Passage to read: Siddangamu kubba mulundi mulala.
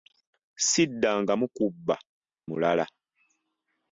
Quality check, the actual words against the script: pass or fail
fail